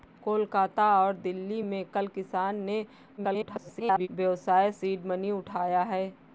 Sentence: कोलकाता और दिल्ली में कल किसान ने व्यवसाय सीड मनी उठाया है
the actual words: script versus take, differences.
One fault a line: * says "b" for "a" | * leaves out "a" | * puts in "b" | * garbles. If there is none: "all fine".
* garbles